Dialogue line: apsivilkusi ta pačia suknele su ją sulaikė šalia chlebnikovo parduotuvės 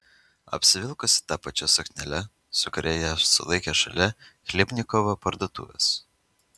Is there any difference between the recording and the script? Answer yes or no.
yes